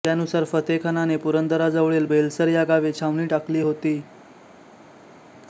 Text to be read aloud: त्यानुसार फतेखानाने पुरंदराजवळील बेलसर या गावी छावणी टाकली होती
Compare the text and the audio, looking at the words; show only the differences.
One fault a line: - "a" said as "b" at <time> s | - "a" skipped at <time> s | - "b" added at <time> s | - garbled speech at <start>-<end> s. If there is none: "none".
none